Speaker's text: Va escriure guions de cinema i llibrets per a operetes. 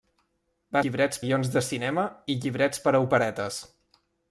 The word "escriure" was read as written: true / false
false